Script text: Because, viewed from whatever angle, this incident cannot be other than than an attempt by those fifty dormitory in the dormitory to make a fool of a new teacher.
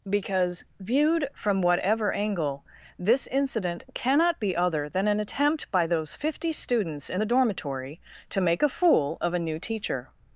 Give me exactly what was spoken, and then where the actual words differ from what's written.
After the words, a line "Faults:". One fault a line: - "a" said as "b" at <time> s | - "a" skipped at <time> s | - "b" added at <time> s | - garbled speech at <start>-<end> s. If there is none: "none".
Because, viewed from whatever angle, this incident cannot be other than an attempt by those fifty students in the dormitory to make a fool of a new teacher.
Faults:
- "than" skipped at 5.1 s
- "dormitory" said as "students" at 6.5 s